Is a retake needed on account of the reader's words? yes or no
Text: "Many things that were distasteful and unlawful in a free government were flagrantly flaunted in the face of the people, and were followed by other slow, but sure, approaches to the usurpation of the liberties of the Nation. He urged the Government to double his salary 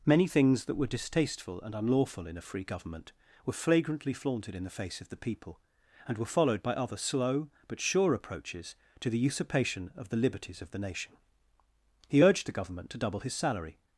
no